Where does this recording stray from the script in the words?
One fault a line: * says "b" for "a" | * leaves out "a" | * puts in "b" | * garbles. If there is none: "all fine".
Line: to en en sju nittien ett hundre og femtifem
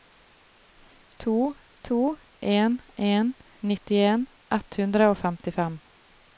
* puts in "to"
* leaves out "sju"